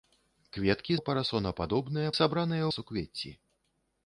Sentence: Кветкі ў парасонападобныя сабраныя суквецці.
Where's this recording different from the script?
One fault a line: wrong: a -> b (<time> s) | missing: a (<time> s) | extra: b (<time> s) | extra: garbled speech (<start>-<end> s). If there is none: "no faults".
no faults